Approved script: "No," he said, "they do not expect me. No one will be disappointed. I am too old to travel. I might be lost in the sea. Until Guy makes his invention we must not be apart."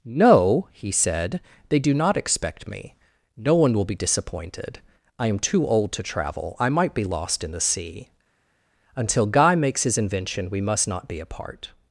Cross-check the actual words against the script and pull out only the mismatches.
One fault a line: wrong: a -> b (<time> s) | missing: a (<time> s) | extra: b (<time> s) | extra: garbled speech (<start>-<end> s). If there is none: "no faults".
no faults